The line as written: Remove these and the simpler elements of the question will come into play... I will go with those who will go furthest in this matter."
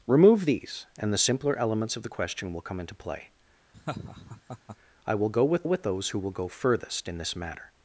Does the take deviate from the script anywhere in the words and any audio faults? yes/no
yes